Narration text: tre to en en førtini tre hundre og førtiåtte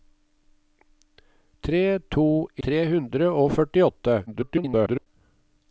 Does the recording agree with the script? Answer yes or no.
no